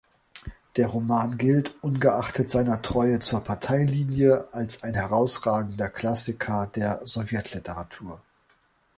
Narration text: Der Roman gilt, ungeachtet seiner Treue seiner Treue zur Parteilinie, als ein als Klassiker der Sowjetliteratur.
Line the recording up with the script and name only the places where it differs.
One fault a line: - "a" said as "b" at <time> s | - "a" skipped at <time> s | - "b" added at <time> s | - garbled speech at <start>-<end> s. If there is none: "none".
- "seiner Treue" skipped at 3.2 s
- "als" said as "herausragender" at 4.9 s